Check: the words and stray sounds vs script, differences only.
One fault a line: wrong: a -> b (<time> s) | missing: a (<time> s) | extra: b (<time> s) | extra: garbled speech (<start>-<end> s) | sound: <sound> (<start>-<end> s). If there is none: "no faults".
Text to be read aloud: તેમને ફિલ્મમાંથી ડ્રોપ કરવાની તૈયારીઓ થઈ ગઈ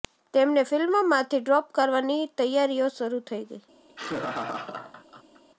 extra: શરૂ (3.0 s)
sound: laugh (3.9-5.4 s)